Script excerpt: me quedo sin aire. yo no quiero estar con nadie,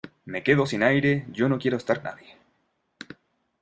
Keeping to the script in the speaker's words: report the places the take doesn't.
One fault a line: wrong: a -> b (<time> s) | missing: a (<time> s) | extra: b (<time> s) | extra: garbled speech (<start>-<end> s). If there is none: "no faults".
missing: con (2.0 s)